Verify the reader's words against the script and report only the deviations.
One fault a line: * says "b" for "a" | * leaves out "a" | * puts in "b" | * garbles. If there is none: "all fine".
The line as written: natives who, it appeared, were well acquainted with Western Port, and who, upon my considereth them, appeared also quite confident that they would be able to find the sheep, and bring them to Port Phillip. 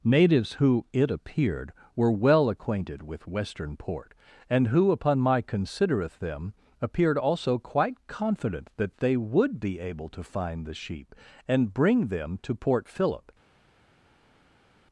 all fine